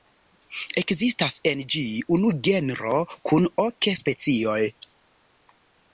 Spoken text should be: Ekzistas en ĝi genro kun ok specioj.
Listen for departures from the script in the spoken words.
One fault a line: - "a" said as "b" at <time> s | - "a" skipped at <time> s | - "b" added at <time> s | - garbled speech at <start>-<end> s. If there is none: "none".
- "unu" added at 2.2 s